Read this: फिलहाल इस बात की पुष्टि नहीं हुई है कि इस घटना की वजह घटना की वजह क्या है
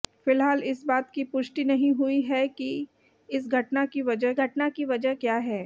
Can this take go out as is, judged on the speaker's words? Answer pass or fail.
pass